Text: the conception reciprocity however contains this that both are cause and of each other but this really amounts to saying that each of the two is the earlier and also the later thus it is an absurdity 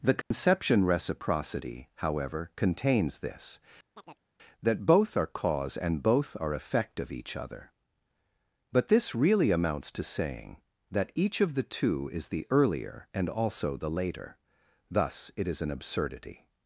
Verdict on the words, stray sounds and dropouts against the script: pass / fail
fail